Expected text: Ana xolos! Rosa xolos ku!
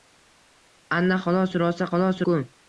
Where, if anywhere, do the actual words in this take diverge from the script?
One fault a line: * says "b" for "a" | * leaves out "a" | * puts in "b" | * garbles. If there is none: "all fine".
all fine